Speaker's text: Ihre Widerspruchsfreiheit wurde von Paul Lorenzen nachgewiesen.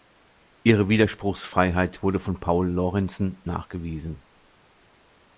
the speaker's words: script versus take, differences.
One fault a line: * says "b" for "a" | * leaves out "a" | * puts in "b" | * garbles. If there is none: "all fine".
all fine